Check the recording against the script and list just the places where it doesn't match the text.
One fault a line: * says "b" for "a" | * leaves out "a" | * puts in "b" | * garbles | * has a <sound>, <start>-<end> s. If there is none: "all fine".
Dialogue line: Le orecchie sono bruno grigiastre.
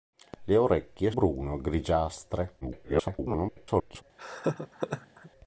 * leaves out "sono"
* garbles
* has a laugh, 4.2-5.3 s